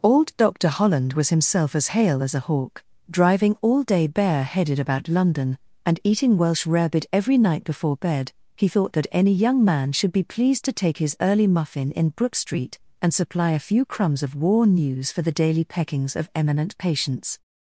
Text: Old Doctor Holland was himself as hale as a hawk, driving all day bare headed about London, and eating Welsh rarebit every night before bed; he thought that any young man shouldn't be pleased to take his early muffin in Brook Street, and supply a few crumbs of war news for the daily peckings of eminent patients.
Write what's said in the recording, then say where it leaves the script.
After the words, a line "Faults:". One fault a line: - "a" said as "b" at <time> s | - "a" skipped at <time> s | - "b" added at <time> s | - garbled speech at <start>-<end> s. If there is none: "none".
Old Doctor Holland was himself as hale as a hawk, driving all day bare headed about London, and eating Welsh rarebit every night before bed; he thought that any young man should be pleased to take his early muffin in Brook Street, and supply a few crumbs of war news for the daily peckings of eminent patients.
Faults:
- "shouldn't" said as "should" at 9.9 s